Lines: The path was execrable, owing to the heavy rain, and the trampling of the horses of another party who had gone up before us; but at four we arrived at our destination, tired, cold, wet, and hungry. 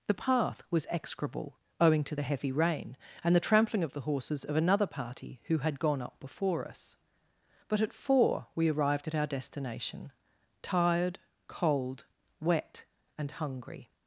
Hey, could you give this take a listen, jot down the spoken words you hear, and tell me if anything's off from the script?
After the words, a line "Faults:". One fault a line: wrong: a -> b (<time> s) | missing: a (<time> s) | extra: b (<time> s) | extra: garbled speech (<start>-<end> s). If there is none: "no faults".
The path was execrable, owing to the heavy rain, and the trampling of the horses of another party who had gone up before us; but at four we arrived at our destination, tired, cold, wet, and hungry.
Faults:
no faults